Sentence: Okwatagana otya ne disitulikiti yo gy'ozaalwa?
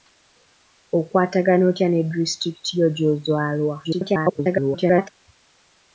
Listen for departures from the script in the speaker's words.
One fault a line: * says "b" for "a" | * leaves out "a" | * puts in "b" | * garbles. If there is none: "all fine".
* garbles